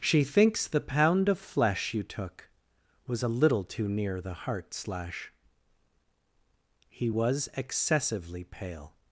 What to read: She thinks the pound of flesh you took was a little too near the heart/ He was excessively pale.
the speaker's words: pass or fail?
fail